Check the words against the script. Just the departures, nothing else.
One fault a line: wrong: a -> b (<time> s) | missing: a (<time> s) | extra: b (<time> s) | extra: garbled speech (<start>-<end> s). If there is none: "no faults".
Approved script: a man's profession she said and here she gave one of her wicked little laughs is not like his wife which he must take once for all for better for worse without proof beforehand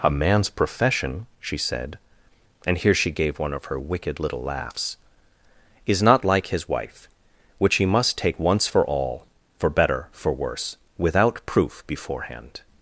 no faults